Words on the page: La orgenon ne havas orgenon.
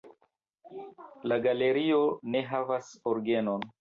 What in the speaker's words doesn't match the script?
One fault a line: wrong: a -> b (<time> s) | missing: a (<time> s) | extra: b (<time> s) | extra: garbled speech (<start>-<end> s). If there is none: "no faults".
wrong: orgenon -> galerio (1.5 s)